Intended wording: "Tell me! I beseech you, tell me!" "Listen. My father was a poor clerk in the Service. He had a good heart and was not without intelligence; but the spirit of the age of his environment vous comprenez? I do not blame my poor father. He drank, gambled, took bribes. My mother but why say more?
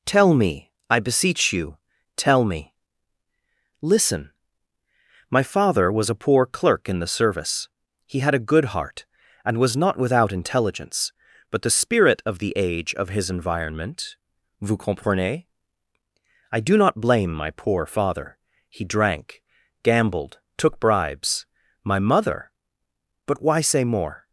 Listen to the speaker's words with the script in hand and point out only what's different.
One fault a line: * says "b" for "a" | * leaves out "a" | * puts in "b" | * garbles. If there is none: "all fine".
all fine